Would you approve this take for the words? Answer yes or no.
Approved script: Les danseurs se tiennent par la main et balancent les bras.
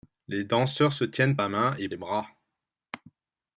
no